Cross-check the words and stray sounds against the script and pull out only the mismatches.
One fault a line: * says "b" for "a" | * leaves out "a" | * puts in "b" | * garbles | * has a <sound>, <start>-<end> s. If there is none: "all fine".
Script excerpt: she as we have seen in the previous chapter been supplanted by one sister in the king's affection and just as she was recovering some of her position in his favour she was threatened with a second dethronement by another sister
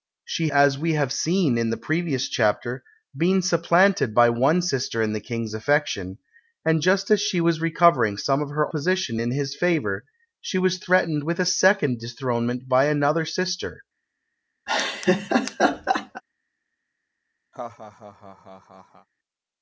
* has a laugh, 14.7-16.2 s
* has a laugh, 17.5-19.1 s